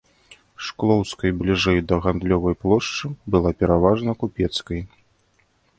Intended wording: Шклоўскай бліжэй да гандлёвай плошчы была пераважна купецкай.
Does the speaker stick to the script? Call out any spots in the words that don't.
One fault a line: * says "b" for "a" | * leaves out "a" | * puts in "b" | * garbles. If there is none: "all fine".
all fine